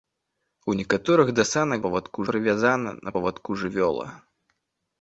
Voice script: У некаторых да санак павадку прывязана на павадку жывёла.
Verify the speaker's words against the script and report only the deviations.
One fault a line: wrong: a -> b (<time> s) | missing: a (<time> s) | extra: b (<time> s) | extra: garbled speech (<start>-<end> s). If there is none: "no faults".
no faults